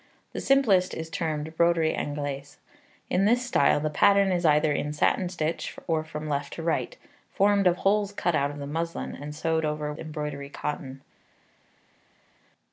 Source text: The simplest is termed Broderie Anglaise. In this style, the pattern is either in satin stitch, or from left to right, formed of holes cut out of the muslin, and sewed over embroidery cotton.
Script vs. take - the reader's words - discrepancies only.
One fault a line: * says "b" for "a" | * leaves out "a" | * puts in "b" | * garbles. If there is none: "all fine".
all fine